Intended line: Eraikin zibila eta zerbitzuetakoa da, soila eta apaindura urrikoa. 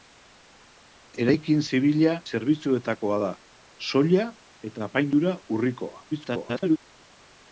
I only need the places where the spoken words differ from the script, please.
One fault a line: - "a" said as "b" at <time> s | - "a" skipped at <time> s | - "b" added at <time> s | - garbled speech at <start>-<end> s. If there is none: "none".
- "eta" skipped at 2.1 s
- garbled speech at 6.1-6.8 s